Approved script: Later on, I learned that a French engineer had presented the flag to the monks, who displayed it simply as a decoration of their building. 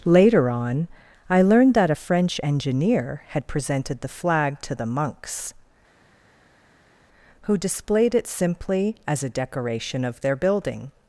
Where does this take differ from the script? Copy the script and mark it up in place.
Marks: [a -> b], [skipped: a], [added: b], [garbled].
Later on, I learned that a French engineer had presented the flag to the monks, who displayed it simply as a decoration of their building.